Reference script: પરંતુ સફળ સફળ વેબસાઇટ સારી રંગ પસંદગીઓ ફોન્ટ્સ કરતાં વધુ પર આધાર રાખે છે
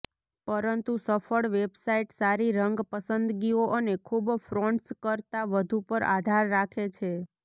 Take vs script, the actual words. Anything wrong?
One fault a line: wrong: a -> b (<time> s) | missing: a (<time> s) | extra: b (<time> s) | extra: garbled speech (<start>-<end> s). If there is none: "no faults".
missing: સફળ (1.5 s)
extra: અને ખૂબ (3.8 s)